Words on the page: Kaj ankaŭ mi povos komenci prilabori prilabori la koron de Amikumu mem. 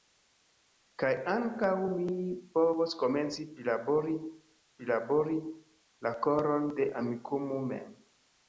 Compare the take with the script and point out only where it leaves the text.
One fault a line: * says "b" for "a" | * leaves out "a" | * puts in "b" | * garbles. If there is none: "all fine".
all fine